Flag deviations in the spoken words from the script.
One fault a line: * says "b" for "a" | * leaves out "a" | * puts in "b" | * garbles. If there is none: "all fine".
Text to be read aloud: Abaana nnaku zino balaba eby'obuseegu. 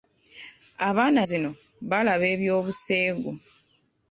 * leaves out "nnaku"